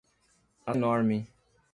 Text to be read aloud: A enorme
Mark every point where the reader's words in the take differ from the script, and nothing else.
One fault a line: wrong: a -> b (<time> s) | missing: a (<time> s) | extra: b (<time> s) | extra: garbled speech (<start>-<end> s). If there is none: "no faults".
no faults